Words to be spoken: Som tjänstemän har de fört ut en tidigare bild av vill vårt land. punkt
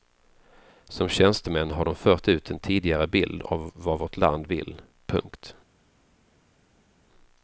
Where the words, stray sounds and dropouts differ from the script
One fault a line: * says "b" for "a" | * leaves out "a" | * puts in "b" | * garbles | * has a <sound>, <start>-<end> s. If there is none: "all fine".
* says "vad" for "vill"
* puts in "vill"